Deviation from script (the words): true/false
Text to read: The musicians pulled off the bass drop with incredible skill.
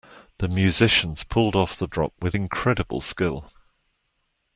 true